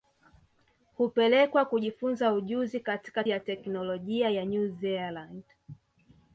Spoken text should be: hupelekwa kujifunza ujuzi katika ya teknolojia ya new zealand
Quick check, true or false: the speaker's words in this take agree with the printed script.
true